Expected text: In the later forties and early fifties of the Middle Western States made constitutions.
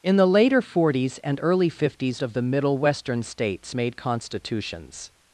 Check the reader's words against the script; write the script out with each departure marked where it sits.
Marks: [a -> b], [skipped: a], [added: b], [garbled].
In the later forties and early fifties of the Middle Western States made constitutions.